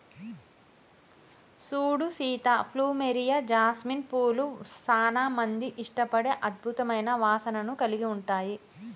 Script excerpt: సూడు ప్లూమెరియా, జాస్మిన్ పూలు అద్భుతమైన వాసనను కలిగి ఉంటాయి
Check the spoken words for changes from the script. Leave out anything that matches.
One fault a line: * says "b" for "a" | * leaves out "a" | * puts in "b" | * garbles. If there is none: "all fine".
* puts in "సీత"
* puts in "సానా మంది ఇష్టపడే"